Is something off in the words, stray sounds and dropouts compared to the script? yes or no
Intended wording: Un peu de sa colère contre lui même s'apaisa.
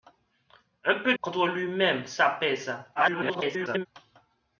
yes